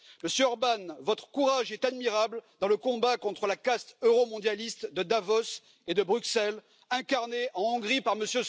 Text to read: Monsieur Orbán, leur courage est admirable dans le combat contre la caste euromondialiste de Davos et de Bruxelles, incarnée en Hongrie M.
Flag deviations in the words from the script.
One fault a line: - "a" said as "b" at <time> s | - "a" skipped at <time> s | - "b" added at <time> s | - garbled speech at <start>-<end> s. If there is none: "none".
- "leur" said as "votre" at 1.0 s
- "par" added at 8.0 s